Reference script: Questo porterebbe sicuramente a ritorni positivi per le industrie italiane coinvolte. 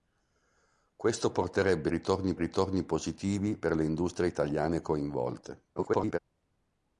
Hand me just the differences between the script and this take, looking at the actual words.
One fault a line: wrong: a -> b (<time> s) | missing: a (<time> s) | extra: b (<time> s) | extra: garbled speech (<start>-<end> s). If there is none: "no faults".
wrong: sicuramente -> ritorni (1.9 s)
extra: garbled speech (5.8-6.2 s)